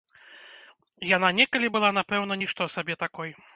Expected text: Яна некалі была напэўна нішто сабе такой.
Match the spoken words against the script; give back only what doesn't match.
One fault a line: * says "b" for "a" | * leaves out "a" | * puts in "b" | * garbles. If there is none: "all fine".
all fine